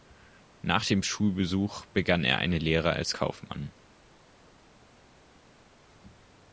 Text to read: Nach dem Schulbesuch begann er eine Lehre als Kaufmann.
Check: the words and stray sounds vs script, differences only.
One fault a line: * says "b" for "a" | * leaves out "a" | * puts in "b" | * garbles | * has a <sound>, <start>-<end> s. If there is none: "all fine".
all fine